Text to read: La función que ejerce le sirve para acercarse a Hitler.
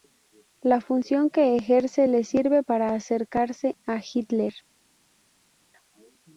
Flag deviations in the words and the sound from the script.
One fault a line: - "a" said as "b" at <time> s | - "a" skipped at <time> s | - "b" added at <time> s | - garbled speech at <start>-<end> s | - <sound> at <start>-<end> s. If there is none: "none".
none